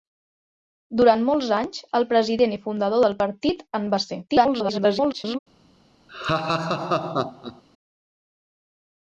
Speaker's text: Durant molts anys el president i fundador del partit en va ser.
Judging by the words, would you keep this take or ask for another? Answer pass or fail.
fail